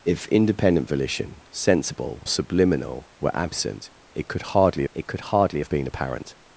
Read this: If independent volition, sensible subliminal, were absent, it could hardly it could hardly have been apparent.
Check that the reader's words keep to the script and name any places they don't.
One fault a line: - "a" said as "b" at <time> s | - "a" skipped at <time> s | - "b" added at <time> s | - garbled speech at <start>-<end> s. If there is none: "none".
none